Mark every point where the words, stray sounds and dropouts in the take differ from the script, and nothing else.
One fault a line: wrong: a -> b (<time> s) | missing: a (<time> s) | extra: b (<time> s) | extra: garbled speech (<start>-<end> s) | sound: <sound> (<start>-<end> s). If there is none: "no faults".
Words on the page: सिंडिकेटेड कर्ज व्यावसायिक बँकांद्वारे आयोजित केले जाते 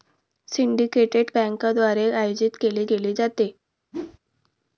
missing: कर्ज व्यावसायिक (1.3 s)
extra: केले (2.9 s)
sound: whoosh (3.9-4.2 s)